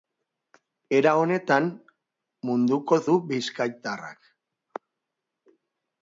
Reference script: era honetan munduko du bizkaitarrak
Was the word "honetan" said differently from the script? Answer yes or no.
no